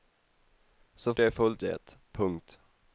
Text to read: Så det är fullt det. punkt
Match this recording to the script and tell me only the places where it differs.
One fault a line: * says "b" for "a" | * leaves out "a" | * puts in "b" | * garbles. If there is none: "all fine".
all fine